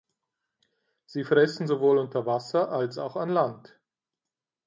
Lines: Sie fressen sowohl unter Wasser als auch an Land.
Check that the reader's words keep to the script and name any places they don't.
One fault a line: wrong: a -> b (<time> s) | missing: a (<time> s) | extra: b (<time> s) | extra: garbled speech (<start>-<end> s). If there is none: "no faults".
no faults